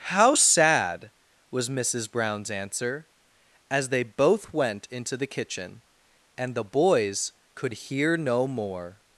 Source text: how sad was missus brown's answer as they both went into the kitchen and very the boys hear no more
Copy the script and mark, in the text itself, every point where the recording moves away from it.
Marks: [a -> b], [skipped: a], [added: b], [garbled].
how sad was missus brown's answer as they both went into the kitchen and [skipped: very] the boys [added: could] hear no more